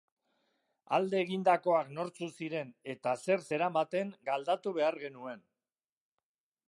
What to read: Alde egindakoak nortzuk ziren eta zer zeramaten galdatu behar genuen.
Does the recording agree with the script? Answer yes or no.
yes